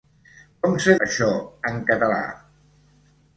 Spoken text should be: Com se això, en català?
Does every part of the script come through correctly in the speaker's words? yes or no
yes